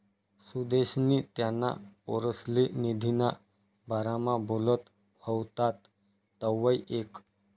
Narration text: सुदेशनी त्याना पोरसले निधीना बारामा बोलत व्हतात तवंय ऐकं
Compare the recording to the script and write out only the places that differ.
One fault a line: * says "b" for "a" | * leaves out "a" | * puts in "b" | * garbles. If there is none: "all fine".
all fine